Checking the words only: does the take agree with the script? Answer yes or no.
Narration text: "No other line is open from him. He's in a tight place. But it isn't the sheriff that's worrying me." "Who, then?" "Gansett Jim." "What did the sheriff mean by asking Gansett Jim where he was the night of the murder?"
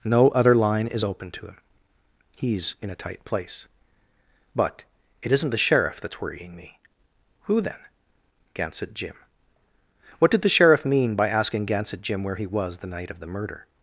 no